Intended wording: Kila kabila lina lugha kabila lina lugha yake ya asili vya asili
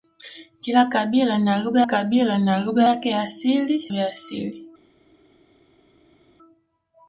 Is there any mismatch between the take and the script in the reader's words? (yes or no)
no